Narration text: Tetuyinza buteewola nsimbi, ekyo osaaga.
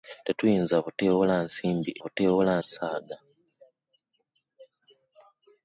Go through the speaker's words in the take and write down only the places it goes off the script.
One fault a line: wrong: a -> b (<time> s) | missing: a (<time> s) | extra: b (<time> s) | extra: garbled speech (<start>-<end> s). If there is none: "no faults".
wrong: ekyo -> buteewola (2.0 s)